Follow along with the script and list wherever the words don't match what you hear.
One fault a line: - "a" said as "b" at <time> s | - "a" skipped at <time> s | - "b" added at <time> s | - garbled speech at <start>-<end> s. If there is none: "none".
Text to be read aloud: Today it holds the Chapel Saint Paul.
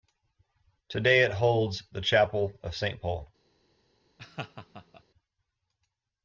- "of" added at 2.6 s